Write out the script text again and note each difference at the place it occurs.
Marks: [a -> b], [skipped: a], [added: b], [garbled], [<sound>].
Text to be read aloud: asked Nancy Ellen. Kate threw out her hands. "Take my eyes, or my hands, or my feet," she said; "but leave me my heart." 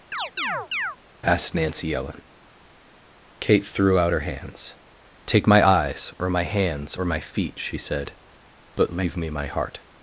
[chirp] asked Nancy Ellen. Kate threw out her hands. "Take my eyes, or my hands, or my feet," she said; "but leave me my heart."